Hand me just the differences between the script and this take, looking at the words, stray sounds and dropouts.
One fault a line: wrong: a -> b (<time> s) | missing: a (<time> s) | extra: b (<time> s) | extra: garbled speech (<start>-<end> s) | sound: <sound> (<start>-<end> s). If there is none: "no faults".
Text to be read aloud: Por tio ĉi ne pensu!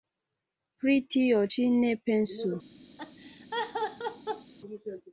wrong: Por -> Pri (0.8 s)
sound: laugh (3.0-4.5 s)